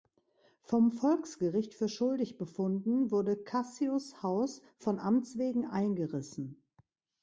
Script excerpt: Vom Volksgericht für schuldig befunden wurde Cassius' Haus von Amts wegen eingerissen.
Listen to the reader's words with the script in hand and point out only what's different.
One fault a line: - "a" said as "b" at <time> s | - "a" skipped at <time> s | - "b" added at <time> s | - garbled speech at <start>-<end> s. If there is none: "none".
none